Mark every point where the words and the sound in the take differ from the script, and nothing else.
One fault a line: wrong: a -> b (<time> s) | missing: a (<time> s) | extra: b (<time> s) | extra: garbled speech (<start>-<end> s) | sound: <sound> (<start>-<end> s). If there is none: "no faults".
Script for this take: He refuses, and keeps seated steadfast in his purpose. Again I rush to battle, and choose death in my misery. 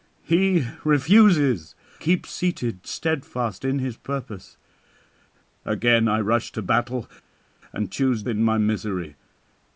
missing: and (1.8 s)
missing: death (8.2 s)